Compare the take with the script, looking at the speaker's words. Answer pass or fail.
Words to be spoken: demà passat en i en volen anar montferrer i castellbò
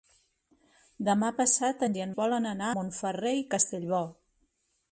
pass